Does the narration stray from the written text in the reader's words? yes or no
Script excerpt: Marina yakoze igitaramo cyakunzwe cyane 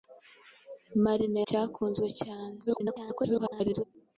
yes